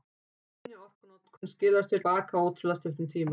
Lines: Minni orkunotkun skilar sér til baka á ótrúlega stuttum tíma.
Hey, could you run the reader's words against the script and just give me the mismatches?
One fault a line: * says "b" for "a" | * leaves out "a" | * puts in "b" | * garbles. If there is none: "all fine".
* leaves out "til"